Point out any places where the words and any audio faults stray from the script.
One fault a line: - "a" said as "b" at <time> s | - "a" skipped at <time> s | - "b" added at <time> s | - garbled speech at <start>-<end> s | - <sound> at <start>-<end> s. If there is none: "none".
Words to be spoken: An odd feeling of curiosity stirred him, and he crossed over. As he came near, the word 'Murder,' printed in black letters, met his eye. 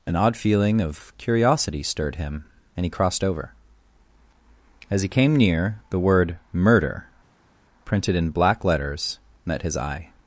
none